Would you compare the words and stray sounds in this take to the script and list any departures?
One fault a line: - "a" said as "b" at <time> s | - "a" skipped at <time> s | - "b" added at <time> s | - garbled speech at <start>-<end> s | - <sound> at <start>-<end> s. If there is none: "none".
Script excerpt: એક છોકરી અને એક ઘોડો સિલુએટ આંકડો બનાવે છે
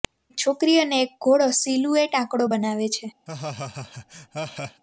- laugh at 3.3-4.8 s